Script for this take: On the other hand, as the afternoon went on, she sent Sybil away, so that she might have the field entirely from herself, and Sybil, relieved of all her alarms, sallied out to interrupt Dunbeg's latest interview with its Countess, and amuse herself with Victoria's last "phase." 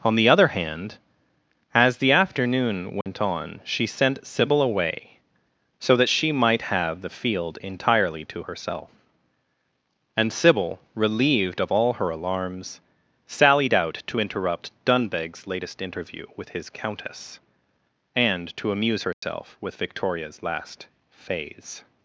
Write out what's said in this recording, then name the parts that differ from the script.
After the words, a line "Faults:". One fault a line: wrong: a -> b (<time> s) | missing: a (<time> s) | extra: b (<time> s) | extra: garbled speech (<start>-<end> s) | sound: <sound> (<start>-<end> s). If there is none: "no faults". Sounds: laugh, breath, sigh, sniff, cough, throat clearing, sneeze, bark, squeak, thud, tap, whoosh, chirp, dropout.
On the other hand, as the afternoon went on, she sent Sybil away, so that she might have the field entirely to herself, and Sybil, relieved of all her alarms, sallied out to interrupt Dunbeg's latest interview with his Countess, and to amuse herself with Victoria's last "phase."
Faults:
sound: dropout (3.0-3.1 s)
wrong: from -> to (8.2 s)
wrong: its -> his (16.5 s)
extra: to (18.5 s)
sound: dropout (19.1-19.2 s)